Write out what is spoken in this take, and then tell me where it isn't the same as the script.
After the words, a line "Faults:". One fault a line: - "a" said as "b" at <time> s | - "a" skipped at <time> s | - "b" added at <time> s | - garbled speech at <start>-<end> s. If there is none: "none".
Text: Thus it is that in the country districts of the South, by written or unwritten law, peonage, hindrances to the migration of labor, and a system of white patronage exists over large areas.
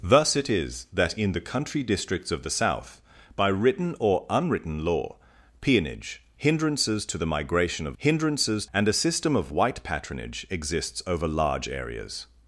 Thus it is that in the country districts of the South, by written or unwritten law, peonage, hindrances to the migration of hindrances, and a system of white patronage exists over large areas.
Faults:
- "labor" said as "hindrances" at 8.0 s